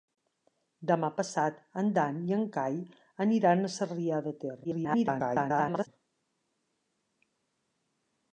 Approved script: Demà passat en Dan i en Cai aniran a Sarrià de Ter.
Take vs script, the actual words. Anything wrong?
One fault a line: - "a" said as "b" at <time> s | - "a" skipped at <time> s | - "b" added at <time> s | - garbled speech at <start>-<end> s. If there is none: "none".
- garbled speech at 4.6-5.9 s